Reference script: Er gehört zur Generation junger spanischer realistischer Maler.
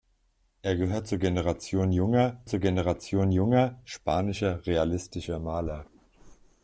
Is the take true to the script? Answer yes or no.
no